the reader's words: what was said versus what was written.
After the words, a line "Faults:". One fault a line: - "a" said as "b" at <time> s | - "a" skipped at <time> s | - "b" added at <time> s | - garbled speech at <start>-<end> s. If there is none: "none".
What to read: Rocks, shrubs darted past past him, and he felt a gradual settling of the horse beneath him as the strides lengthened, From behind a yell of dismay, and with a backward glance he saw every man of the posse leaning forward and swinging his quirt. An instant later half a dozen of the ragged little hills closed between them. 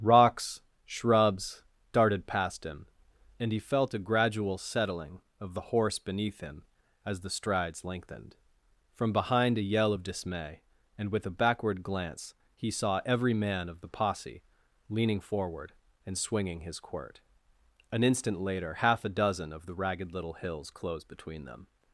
Rocks, shrubs darted past him, and he felt a gradual settling of the horse beneath him as the strides lengthened, From behind a yell of dismay, and with a backward glance he saw every man of the posse leaning forward and swinging his quirt. An instant later half a dozen of the ragged little hills closed between them.
Faults:
- "past" skipped at 2.6 s